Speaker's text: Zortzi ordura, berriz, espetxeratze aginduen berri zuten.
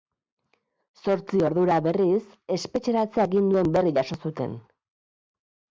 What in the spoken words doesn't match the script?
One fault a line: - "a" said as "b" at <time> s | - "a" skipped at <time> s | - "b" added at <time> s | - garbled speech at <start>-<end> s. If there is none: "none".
- "jaso" added at 4.0 s